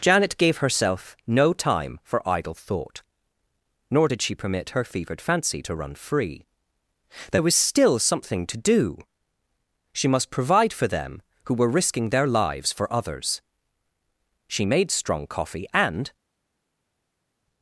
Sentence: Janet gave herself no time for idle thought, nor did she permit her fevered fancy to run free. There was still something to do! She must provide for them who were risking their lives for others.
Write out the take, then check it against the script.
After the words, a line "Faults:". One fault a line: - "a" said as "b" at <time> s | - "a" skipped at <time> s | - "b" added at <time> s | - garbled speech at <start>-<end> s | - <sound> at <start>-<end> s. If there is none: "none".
Janet gave herself no time for idle thought, nor did she permit her fevered fancy to run free. There was still something to do! She must provide for them who were risking their lives for others. She made strong coffee, and
Faults:
- "She made strong coffee and" added at 14.5 s